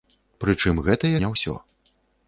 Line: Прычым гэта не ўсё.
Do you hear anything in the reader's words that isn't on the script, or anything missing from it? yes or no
no